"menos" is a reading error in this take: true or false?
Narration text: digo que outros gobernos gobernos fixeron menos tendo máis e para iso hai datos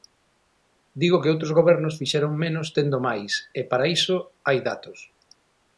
false